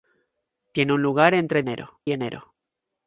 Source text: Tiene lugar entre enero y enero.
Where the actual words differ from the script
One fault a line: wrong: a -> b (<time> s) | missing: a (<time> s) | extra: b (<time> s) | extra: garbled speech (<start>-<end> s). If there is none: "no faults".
no faults